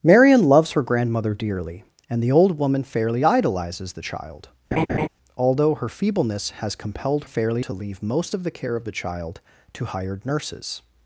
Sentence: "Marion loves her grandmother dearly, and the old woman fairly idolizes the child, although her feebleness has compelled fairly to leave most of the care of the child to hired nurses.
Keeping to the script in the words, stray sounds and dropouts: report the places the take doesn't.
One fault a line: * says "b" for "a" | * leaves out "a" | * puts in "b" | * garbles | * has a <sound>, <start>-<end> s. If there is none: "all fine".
* has a laugh, 4.7-5.1 s